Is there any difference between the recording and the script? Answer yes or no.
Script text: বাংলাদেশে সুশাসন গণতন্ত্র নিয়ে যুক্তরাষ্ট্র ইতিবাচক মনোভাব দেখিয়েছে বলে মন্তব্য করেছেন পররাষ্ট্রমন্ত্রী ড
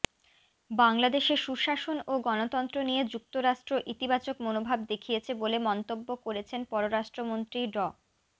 yes